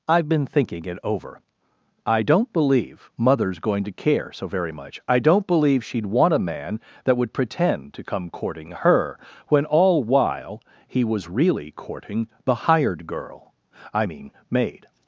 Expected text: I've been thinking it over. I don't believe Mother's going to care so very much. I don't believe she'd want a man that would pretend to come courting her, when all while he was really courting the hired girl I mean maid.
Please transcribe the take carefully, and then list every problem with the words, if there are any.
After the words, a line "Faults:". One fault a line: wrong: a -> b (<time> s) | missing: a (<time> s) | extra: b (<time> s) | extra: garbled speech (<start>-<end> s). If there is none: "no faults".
I've been thinking it over. I don't believe Mother's going to care so very much. I don't believe she'd want a man that would pretend to come courting her, when all while he was really courting the hired girl I mean maid.
Faults:
no faults